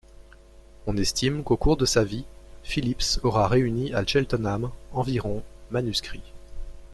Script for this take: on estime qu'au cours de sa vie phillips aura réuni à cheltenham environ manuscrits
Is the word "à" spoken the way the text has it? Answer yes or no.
yes